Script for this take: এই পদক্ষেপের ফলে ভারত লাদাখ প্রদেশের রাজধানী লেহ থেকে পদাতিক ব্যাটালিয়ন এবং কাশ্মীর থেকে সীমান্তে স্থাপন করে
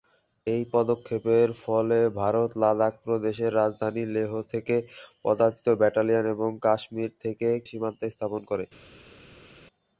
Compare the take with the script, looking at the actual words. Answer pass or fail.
pass